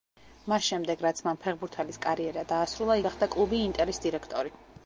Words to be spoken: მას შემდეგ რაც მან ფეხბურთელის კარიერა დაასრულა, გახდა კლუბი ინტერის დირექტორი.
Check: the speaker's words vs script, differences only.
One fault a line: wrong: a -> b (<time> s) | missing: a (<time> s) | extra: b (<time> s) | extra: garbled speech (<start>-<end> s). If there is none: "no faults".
no faults